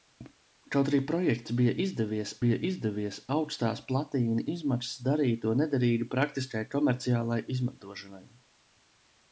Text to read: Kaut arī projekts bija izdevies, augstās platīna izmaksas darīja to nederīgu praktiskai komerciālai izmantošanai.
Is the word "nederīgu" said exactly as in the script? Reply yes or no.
yes